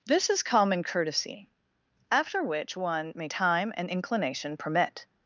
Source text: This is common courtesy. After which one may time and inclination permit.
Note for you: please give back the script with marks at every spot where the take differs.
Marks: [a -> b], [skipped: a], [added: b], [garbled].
This is common courtesy. After which one may time and inclination permit.